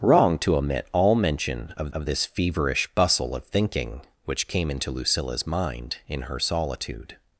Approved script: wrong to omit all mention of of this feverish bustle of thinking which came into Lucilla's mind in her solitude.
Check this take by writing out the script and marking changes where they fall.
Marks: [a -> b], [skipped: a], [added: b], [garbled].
wrong to omit all mention of of this feverish bustle of thinking which came into Lucilla's mind in her solitude.